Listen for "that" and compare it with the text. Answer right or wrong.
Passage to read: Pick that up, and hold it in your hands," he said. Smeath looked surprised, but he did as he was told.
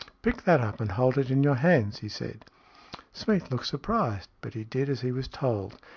right